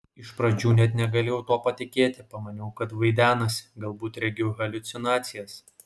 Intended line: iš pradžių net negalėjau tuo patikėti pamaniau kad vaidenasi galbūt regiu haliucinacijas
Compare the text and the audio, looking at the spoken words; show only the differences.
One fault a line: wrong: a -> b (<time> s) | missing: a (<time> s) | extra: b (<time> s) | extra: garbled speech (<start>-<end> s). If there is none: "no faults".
no faults